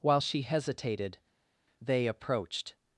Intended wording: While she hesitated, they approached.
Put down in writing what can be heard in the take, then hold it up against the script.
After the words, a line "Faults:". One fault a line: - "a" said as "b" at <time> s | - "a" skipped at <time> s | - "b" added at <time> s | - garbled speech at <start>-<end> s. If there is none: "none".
While she hesitated, they approached.
Faults:
none